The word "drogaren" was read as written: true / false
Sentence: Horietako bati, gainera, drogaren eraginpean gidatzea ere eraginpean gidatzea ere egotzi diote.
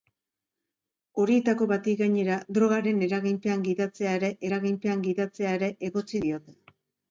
true